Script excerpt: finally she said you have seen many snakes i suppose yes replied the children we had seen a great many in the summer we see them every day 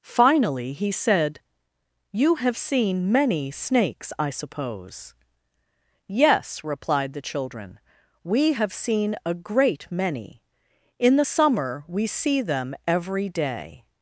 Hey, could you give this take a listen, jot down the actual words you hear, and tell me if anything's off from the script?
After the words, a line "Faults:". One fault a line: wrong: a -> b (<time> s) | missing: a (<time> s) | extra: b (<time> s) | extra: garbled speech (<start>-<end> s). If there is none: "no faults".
finally he said you have seen many snakes i suppose yes replied the children we have seen a great many in the summer we see them every day
Faults:
wrong: she -> he (0.7 s)
wrong: had -> have (8.5 s)